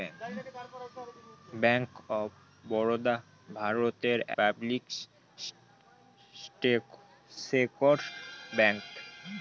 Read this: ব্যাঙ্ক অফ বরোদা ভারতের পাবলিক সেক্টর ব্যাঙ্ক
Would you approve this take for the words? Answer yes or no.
yes